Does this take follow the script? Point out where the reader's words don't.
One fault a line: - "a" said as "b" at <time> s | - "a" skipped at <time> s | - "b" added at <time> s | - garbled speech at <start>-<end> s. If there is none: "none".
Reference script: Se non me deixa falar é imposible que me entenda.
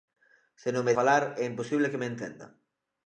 - "deixa" skipped at 1.0 s